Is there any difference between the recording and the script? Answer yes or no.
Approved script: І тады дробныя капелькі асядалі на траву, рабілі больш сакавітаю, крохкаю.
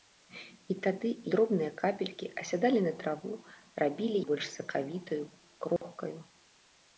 no